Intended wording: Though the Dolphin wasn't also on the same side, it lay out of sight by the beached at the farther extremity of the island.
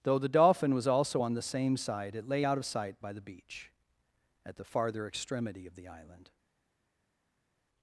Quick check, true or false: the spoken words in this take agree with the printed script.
false